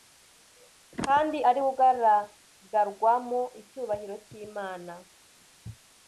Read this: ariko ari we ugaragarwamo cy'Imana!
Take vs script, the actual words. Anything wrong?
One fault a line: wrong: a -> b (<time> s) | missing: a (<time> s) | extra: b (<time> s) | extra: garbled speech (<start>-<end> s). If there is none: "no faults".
wrong: ariko -> kandi (1.1 s)
extra: icyubahiro (3.6 s)